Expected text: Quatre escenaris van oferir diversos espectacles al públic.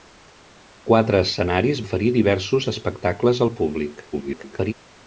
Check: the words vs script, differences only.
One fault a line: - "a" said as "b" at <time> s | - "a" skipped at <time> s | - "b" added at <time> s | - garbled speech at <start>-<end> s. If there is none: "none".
- "van" skipped at 1.8 s
- garbled speech at 4.1-4.7 s